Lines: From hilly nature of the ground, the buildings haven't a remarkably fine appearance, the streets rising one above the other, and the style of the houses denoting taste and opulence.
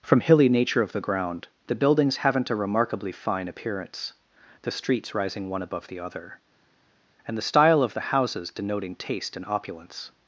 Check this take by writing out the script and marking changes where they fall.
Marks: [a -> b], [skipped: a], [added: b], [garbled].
From hilly nature of the ground, the buildings haven't a remarkably fine appearance, the streets rising one above the other, and the style of the houses denoting taste and opulence.